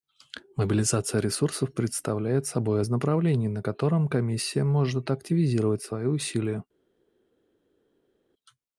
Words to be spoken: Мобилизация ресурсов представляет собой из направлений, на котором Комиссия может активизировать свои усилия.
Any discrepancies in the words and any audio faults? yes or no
no